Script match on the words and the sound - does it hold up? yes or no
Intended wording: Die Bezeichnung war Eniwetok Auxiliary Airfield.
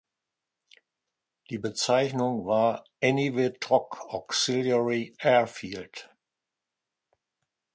yes